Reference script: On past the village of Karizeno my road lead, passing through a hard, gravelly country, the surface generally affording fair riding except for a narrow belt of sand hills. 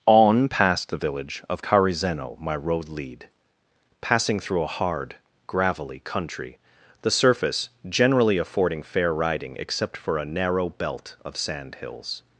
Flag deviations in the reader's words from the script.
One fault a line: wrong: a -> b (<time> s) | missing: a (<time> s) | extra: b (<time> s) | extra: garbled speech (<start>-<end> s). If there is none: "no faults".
no faults